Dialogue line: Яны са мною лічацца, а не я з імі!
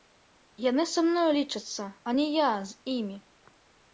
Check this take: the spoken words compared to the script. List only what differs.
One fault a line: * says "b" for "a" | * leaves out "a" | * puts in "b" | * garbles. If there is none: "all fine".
all fine